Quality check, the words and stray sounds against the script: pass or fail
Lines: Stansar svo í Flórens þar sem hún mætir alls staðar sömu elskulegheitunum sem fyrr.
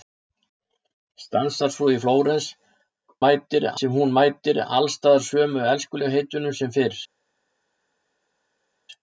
fail